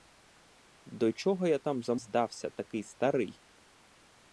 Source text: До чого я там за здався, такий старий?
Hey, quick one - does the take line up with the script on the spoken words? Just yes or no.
yes